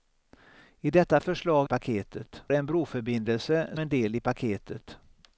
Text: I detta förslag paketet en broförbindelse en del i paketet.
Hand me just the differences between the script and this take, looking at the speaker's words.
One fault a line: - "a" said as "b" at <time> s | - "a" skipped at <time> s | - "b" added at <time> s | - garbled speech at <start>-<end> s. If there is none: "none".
none